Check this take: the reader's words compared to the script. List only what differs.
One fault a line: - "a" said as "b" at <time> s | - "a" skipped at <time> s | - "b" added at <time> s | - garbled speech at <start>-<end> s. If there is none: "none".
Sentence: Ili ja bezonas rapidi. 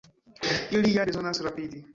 none